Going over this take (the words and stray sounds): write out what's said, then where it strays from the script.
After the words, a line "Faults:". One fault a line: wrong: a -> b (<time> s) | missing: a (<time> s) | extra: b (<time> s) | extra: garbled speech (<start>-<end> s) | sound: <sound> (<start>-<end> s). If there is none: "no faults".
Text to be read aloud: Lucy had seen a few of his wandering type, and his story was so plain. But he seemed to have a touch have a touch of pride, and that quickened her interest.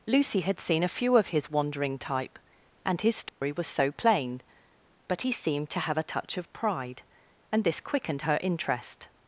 Lucy had seen a few of his wandering type, and his story was so plain. But he seemed to have a touch of pride, and this quickened her interest.
Faults:
sound: dropout (3.3-3.4 s)
missing: have a touch (6.4 s)
wrong: that -> this (7.6 s)